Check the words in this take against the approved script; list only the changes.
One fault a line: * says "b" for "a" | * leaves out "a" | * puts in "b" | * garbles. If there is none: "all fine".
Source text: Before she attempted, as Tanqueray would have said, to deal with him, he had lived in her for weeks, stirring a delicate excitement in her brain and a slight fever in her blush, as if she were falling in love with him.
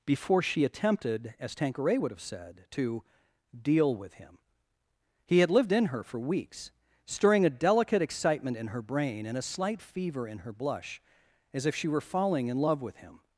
all fine